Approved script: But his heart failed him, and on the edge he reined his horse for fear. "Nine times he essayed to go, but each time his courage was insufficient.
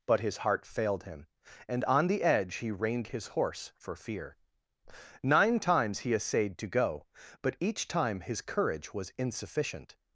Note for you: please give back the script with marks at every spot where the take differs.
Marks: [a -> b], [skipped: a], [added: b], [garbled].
But his heart failed him, and on the edge he reined his horse for fear. "Nine times he essayed to go, but each time his courage was insufficient.